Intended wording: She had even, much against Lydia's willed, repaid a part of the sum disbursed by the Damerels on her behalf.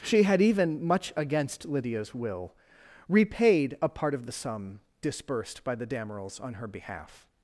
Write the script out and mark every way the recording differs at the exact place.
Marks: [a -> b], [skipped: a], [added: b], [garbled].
She had even, much against Lydia's [willed, -> will] repaid a part of the sum disbursed by the Damerels on her behalf.